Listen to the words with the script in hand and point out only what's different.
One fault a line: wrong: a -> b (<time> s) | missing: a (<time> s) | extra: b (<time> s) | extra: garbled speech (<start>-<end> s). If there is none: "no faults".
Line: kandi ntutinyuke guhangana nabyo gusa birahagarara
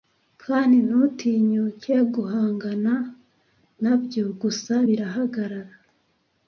no faults